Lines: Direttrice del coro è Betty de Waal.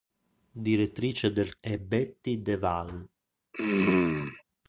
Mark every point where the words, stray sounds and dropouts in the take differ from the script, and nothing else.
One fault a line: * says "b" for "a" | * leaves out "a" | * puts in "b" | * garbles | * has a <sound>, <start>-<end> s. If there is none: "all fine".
* leaves out "coro"
* has a throat clearing, 3.5-4.4 s